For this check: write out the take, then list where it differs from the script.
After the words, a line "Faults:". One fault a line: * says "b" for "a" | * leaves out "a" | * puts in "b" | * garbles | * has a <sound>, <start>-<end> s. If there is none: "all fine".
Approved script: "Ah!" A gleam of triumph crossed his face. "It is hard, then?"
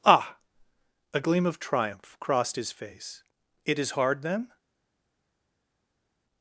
"Ah!" A gleam of triumph crossed his face. "It is hard, then?"
Faults:
all fine